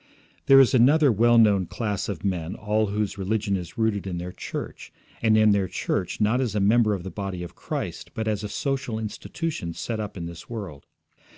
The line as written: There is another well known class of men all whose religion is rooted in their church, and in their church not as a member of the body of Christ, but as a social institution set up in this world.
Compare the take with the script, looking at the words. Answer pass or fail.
pass